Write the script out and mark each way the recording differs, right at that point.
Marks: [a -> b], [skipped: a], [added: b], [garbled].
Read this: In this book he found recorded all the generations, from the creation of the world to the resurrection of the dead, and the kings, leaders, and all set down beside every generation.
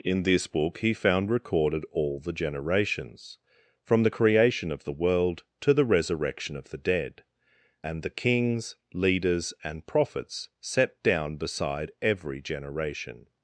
In this book he found recorded all the generations, from the creation of the world to the resurrection of the dead, and the kings, leaders, and [all -> prophets] set down beside every generation.